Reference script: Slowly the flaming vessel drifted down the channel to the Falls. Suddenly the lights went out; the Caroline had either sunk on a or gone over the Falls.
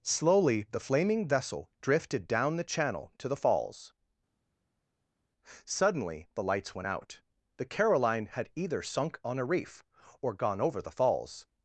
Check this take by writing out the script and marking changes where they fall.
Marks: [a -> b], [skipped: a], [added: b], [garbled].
Slowly the flaming vessel drifted down the channel to the Falls. Suddenly the lights went out; the Caroline had either sunk on a [added: reef] or gone over the Falls.